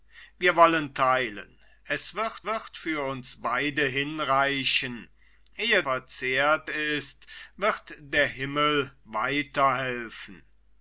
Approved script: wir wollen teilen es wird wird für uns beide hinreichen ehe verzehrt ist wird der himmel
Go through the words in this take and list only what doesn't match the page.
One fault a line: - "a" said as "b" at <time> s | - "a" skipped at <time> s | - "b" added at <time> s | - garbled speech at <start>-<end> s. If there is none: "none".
none